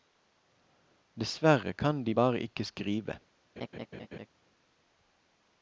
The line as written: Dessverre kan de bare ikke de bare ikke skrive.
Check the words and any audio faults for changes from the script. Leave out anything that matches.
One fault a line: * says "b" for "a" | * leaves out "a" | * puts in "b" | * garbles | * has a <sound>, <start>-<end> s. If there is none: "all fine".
* leaves out "de bare ikke"
* has a laugh, 3.6-4.3 s